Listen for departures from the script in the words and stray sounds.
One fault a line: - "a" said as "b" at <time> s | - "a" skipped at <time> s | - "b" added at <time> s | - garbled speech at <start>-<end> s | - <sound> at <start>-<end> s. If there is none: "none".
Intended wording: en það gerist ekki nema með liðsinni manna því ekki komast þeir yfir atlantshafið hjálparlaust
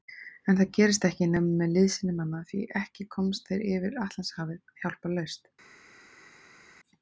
none